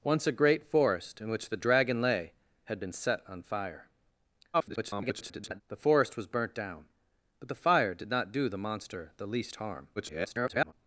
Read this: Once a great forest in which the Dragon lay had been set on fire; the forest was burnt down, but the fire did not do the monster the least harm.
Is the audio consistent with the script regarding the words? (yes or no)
no